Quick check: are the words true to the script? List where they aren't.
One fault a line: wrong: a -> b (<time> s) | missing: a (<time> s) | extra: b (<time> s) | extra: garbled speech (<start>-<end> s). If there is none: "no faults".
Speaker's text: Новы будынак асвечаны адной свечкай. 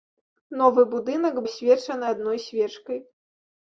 no faults